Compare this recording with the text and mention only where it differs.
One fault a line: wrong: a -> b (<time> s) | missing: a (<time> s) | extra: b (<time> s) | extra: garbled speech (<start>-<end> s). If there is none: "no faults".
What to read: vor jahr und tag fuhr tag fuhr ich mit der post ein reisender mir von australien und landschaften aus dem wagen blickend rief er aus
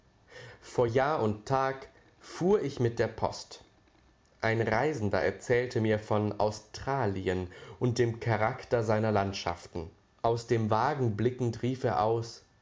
missing: tag fuhr (2.6 s)
extra: erzählte (5.2 s)
extra: dem charakter seiner (8.0 s)